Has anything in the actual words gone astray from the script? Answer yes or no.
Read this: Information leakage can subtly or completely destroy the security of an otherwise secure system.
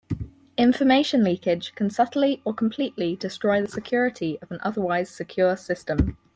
no